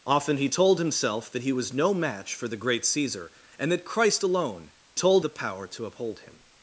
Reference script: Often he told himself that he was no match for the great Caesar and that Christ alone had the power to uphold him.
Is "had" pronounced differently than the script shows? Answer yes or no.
yes